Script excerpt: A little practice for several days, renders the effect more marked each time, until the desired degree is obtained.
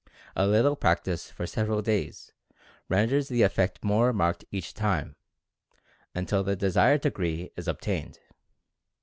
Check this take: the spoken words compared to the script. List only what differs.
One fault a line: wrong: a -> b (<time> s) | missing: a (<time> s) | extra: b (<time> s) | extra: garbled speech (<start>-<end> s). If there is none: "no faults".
no faults